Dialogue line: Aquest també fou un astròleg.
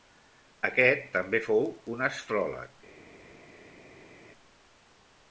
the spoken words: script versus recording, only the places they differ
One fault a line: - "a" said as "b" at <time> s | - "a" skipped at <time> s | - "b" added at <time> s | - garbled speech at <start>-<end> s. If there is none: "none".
none